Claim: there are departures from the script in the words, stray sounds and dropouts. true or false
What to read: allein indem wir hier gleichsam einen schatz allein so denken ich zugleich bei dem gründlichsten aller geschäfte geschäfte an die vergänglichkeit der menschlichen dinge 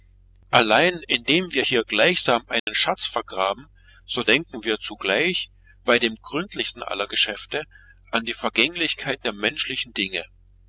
true